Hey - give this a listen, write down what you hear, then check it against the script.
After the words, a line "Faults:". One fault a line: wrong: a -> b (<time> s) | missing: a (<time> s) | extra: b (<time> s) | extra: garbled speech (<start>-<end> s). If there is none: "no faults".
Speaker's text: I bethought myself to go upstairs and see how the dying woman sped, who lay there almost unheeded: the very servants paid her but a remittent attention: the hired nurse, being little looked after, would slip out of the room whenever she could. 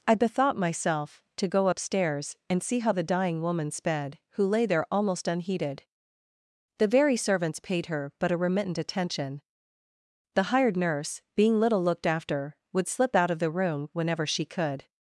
I bethought myself to go upstairs and see how the dying woman sped, who lay there almost unheeded: the very servants paid her but a remittent attention: the hired nurse, being little looked after, would slip out of the room whenever she could.
Faults:
no faults